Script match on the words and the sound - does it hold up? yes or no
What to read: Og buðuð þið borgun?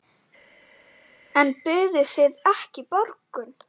no